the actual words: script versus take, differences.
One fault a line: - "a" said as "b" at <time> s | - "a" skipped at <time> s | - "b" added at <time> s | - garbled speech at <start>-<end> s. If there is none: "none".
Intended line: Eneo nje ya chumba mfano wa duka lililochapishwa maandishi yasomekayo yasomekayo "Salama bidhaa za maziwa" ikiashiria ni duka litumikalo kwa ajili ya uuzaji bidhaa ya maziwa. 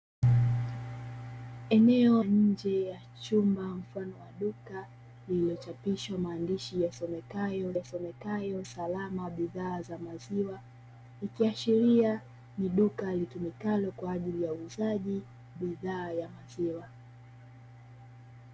none